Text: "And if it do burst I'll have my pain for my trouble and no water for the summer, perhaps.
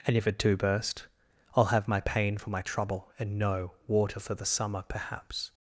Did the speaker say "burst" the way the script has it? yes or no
yes